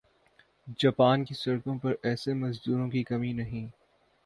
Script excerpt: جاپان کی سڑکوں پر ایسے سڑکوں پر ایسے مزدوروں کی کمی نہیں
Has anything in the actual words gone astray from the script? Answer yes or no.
yes